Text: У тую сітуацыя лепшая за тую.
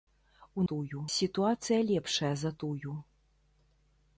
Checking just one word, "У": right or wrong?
right